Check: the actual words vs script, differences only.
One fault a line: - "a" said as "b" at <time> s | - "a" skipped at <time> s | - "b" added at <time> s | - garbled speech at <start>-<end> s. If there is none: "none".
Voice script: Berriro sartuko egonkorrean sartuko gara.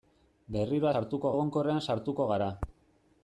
none